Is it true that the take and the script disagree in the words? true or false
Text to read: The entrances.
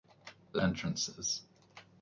false